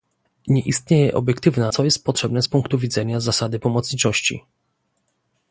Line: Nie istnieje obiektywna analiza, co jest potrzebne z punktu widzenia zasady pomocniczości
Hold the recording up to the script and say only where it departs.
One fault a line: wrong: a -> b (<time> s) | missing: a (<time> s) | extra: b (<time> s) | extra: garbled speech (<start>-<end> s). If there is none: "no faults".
missing: analiza (1.7 s)